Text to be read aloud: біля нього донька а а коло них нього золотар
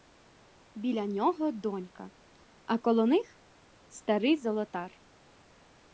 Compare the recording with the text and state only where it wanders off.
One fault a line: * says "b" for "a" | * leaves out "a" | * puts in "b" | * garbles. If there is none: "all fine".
* leaves out "а"
* says "старий" for "нього"